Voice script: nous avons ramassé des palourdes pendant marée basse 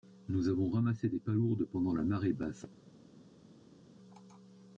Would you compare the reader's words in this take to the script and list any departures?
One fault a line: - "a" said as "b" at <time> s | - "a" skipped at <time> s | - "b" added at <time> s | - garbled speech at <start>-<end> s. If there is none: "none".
- "la" added at 1.9 s